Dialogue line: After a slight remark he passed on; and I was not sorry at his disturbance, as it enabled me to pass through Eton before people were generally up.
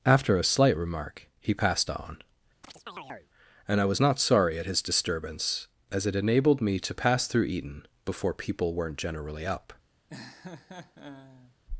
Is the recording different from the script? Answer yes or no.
yes